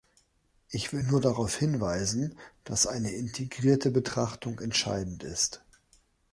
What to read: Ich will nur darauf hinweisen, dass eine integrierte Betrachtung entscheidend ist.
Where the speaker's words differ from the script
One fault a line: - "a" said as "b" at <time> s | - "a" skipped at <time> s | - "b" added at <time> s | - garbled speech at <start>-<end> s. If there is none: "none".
none